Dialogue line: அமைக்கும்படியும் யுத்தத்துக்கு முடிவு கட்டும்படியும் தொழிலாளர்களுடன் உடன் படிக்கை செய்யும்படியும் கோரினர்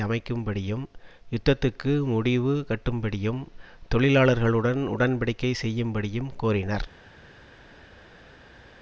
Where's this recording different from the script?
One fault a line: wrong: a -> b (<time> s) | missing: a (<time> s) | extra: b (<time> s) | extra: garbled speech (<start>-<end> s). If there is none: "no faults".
no faults